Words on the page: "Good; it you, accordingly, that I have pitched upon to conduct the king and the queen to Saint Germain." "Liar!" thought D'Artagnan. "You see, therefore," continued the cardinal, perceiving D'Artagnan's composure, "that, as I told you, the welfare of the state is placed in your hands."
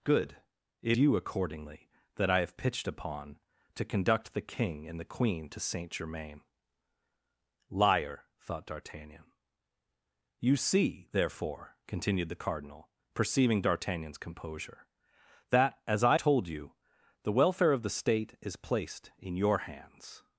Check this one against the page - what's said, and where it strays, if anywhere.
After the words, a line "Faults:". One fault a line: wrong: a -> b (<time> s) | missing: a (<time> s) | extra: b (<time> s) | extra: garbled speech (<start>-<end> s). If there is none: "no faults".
"Good; it you, accordingly, that I have pitched upon to conduct the king and the queen to Saint Germain." "Liar!" thought D'Artagnan. "You see, therefore," continued the cardinal, perceiving D'Artagnan's composure, "that, as I told you, the welfare of the state is placed in your hands."
Faults:
no faults